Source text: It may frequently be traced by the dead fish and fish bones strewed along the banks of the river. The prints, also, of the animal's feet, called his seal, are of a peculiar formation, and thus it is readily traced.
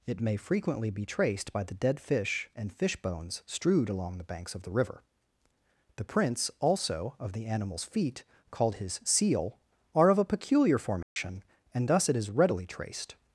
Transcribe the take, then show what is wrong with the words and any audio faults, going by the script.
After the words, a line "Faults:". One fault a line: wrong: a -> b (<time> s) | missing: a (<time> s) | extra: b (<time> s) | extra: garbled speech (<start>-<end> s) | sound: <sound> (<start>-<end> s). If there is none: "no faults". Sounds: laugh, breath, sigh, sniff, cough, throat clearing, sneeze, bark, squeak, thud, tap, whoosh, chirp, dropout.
It may frequently be traced by the dead fish and fish bones strewed along the banks of the river. The prints, also, of the animal's feet, called his seal, are of a peculiar formation, and thus it is readily traced.
Faults:
sound: dropout (11.0-11.2 s)